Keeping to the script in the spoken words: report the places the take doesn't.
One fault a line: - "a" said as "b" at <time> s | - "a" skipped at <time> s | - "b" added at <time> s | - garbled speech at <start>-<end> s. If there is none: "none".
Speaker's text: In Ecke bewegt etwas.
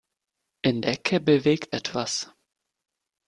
none